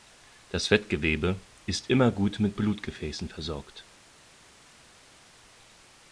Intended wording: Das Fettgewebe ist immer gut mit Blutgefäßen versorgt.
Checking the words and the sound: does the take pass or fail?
pass